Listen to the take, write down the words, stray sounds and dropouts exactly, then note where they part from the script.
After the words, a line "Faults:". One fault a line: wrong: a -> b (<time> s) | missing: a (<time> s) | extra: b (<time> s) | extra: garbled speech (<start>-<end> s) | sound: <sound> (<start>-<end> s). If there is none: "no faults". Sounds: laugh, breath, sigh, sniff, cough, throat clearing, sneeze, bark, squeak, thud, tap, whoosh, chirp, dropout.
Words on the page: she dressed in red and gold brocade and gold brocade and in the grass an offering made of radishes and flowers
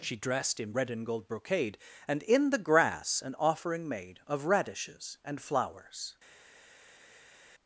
she dressed in red and gold brocade and in the grass an offering made of radishes and flowers
Faults:
missing: gold brocade and (2.2 s)